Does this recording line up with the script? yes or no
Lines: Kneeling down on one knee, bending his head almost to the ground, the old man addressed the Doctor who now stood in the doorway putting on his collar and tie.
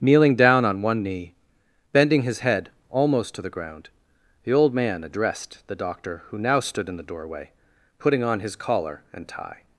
yes